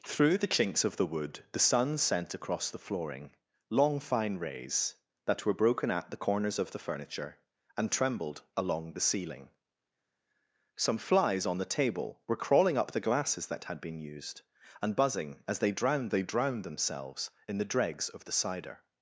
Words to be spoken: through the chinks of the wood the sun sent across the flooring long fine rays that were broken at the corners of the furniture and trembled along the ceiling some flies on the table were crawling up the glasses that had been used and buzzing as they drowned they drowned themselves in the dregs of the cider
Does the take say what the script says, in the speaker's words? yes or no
yes